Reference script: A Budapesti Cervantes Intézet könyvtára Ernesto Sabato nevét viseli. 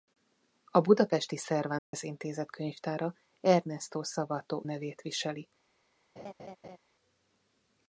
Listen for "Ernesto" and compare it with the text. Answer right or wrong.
right